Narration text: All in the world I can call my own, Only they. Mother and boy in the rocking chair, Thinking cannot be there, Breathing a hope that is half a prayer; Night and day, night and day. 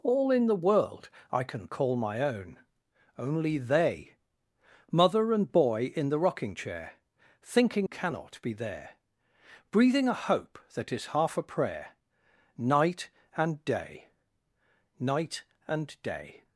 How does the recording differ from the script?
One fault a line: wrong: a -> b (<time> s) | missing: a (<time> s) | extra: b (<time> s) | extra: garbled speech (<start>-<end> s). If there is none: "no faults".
no faults